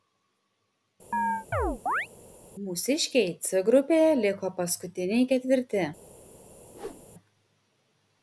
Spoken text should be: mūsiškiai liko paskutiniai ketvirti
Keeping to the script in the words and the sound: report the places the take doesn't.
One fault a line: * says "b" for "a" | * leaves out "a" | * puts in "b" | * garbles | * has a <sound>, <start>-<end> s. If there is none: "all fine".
* has a chirp, 1.1-2.1 s
* puts in "c grupėje"
* has a whoosh, 6.7-7.1 s